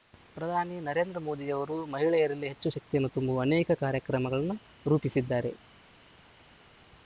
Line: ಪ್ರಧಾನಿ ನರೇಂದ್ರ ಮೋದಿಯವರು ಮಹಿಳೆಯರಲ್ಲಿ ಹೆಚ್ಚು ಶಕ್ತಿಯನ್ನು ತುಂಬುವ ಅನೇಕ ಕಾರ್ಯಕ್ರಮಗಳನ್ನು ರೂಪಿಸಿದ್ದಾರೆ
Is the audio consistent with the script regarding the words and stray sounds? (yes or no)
yes